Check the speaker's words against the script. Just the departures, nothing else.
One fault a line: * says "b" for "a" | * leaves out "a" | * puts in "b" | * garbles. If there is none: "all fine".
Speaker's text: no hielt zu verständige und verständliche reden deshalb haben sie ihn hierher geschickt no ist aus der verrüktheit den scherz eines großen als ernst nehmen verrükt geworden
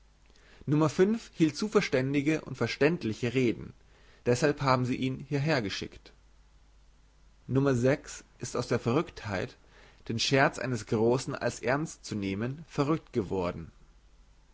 * puts in "zu"